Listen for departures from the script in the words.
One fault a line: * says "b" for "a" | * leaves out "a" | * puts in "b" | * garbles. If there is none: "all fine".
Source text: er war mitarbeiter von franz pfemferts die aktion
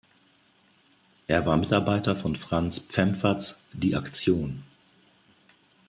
all fine